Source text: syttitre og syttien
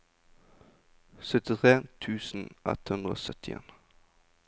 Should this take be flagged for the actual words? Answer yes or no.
yes